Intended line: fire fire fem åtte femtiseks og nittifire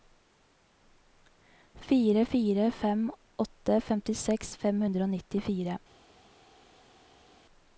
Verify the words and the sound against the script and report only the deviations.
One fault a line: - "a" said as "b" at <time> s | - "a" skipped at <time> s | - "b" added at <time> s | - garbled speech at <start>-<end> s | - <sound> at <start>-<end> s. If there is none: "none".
- "fem hundre" added at 4.7 s